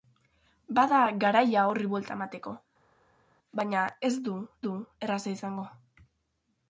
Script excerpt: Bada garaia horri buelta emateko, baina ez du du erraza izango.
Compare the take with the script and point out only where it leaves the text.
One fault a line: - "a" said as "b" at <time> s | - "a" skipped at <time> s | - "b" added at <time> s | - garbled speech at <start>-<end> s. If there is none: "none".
none